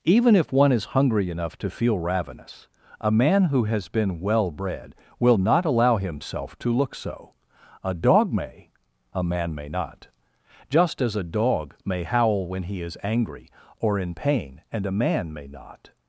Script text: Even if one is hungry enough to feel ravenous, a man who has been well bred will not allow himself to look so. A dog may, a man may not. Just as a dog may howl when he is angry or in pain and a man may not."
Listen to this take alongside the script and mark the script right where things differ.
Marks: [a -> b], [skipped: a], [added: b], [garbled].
Even if one is hungry enough to feel ravenous, a man who has been well bred will not allow himself to look so. A dog may, a man may not. Just as a dog may howl when he is angry or in pain and a man may not."